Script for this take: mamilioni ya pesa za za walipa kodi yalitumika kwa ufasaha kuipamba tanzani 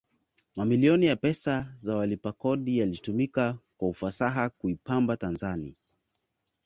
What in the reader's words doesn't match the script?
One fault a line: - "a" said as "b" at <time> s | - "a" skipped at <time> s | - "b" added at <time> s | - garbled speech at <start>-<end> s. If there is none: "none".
- "za" skipped at 1.9 s